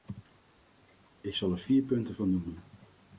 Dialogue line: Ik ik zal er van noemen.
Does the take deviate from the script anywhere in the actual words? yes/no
yes